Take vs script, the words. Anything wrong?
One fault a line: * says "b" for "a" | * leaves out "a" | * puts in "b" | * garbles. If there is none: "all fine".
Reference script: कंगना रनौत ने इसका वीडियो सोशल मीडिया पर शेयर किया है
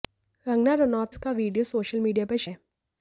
* leaves out "ने"
* leaves out "शेयर किया"